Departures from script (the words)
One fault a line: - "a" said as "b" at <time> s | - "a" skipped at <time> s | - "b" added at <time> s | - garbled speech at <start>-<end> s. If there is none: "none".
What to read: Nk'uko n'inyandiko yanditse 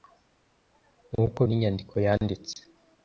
none